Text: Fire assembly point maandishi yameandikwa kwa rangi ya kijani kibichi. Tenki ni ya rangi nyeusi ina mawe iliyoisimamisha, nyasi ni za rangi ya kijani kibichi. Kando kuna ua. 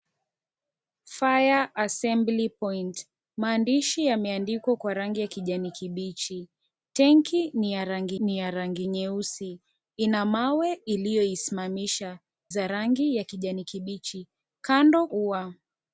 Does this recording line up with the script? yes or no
no